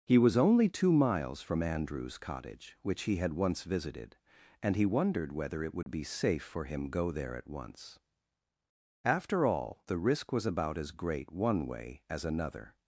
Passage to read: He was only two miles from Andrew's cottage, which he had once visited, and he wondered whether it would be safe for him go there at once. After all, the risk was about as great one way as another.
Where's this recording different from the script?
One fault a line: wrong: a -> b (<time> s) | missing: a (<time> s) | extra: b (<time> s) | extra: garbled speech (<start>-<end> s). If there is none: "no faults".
no faults